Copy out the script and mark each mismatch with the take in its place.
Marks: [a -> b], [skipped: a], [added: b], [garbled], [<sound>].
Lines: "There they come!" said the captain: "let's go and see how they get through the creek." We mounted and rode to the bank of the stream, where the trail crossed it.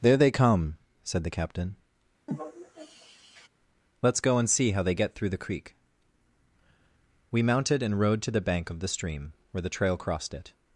"There they come!" said the captain: [sigh] "let's go and see how they get through the creek." We mounted and rode to the bank of the stream, where the trail crossed it.